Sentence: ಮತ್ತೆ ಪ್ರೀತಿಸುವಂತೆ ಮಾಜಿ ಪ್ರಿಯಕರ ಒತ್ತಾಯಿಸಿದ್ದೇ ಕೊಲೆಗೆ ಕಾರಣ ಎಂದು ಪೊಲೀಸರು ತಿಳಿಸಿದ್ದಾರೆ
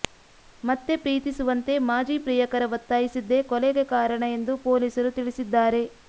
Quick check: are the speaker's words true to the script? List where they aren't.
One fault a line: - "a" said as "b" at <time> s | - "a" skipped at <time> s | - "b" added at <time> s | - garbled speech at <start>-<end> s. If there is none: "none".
none